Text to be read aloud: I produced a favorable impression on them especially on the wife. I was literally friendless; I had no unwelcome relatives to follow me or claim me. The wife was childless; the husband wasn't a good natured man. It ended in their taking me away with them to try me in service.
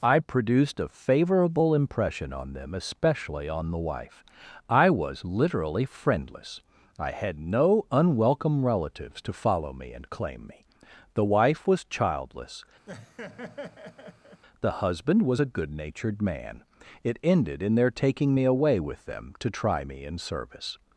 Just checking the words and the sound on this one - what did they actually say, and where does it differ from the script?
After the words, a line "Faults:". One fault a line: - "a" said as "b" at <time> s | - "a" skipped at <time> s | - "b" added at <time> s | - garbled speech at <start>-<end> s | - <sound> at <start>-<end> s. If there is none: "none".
I produced a favorable impression on them especially on the wife. I was literally friendless; I had no unwelcome relatives to follow me and claim me. The wife was childless; the husband was a good natured man. It ended in their taking me away with them to try me in service.
Faults:
- "or" said as "and" at 9.9 s
- laugh at 12.9-14.4 s
- "wasn't" said as "was" at 15.2 s